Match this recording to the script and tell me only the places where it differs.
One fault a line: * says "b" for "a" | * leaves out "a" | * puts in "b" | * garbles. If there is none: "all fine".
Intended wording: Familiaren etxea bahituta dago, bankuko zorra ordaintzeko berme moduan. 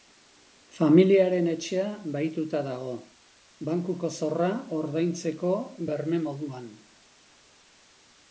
all fine